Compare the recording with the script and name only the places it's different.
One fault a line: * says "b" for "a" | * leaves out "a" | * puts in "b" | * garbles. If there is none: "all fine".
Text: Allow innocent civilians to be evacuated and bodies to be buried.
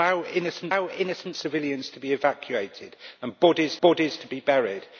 * puts in "allow innocent"
* puts in "bodies"